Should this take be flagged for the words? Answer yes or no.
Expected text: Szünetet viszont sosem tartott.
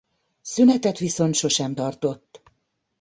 no